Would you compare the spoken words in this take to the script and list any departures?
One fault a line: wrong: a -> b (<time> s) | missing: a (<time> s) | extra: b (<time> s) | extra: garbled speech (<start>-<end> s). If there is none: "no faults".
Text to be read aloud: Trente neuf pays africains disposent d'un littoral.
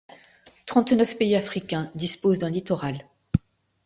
no faults